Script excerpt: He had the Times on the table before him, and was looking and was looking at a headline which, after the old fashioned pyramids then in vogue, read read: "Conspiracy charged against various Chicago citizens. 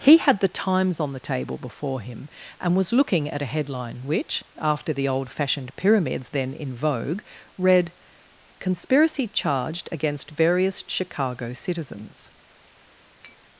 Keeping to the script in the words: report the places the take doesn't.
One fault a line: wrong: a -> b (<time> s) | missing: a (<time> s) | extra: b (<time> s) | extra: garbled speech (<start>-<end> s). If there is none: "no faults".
missing: and was looking (3.3 s)
missing: read (7.9 s)